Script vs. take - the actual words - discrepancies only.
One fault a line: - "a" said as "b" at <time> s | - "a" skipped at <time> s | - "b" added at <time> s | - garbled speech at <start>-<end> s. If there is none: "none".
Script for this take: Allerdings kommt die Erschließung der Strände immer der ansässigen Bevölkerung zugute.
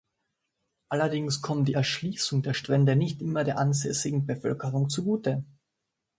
- "nicht" added at 2.9 s